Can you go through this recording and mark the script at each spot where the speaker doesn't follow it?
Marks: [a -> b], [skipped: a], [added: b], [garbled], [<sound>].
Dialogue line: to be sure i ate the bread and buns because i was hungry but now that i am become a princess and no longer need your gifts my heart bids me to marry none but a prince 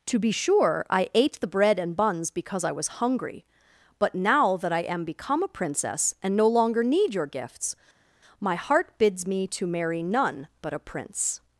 to be sure i ate the bread and buns because i was hungry but now that i am become a princess and no longer need your gifts my heart bids me to marry none but a prince